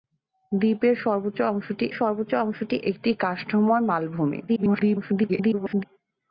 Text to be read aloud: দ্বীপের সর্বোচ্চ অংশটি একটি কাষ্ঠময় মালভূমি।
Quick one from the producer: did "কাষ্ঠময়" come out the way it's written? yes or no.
yes